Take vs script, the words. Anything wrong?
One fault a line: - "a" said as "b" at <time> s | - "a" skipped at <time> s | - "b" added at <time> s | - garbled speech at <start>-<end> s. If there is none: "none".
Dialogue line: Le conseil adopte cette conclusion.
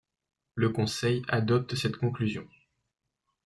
none